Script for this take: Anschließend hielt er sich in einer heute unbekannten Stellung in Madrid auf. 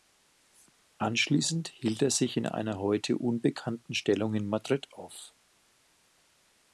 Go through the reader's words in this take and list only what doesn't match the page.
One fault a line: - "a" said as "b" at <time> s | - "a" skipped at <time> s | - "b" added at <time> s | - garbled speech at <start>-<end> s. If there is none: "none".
none